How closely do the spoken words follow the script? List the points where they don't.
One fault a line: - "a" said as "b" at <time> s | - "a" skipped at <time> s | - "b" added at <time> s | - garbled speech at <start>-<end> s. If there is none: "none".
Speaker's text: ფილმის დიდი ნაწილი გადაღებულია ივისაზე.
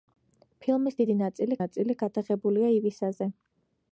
- "ნაწილი" added at 1.6 s